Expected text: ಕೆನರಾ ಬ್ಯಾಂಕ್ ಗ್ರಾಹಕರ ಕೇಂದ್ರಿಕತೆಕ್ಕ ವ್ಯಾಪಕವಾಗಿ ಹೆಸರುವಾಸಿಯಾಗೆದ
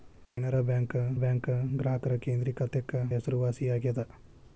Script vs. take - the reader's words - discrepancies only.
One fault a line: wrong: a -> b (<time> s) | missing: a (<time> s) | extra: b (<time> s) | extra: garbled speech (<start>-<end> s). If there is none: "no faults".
extra: ಬ್ಯಾಂಕ್ (1.1 s)
missing: ವ್ಯಾಪಕವಾಗಿ (2.9 s)